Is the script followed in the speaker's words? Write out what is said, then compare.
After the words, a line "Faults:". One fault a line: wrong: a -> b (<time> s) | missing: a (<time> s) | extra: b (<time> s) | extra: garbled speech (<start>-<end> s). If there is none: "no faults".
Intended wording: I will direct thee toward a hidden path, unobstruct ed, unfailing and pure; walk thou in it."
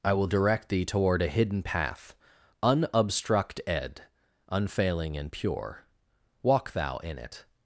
I will direct thee toward a hidden path, unobstruct ed, unfailing and pure; walk thou in it."
Faults:
no faults